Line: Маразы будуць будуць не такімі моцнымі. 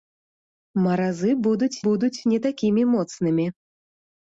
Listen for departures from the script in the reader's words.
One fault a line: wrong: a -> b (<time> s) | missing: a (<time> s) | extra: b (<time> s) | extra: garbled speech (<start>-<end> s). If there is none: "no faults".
no faults